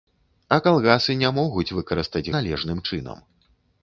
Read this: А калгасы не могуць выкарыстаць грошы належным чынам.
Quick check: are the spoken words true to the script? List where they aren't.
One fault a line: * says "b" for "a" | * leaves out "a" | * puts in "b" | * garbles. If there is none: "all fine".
* leaves out "грошы"